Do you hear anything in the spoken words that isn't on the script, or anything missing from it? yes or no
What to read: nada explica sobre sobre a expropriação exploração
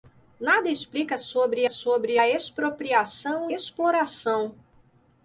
no